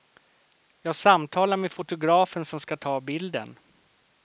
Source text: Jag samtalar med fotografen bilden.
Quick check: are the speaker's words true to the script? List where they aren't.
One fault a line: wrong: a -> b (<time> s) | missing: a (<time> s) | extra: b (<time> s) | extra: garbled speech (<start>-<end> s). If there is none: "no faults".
extra: som ska ta (2.5 s)